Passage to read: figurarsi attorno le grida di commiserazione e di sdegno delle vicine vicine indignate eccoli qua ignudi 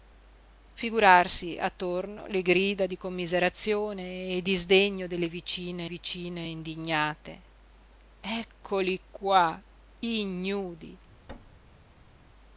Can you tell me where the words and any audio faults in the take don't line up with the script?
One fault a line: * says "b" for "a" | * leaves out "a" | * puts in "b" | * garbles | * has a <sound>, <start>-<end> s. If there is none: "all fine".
* has a thud, 11.3-12.3 s